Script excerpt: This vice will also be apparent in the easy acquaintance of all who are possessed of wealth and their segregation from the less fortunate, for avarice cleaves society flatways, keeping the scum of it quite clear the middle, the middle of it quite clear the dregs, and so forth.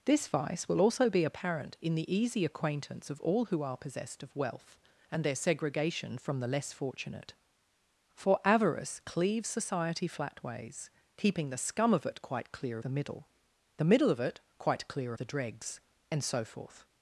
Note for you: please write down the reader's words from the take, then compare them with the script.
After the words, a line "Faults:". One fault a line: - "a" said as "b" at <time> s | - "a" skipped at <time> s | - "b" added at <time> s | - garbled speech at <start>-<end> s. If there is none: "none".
This vice will also be apparent in the easy acquaintance of all who are possessed of wealth and their segregation from the less fortunate, for avarice cleaves society flatways, keeping the scum of it quite clear the middle, the middle of it quite clear the dregs, and so forth.
Faults:
none